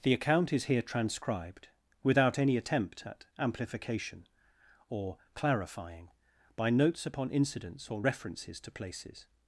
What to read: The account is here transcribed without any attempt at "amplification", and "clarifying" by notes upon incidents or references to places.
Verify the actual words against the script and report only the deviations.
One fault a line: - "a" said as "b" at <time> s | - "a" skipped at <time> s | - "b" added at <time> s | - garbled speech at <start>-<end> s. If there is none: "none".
- "and" said as "or" at 4.9 s